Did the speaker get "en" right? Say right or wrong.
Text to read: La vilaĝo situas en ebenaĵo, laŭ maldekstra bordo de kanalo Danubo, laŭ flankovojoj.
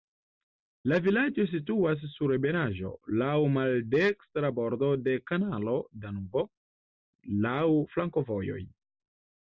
wrong